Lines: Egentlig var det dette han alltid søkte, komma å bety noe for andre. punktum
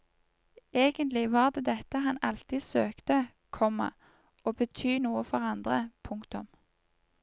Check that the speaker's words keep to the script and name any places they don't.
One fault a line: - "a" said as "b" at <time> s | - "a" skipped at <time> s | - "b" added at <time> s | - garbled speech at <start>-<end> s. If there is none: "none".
none